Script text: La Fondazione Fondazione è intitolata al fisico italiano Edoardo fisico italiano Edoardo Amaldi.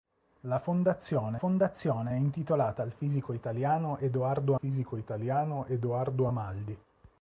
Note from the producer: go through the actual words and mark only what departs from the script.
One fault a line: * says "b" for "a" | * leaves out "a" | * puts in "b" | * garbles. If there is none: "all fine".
all fine